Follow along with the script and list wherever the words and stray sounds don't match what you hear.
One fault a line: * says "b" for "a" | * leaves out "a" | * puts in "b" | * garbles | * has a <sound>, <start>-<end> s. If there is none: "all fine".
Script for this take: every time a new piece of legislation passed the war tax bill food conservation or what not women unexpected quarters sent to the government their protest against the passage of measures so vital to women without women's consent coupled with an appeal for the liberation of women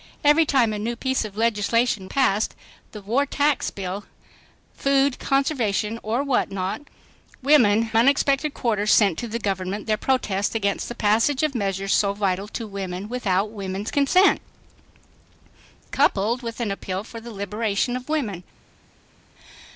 all fine